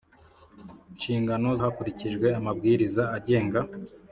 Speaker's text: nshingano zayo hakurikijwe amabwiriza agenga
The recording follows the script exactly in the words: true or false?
false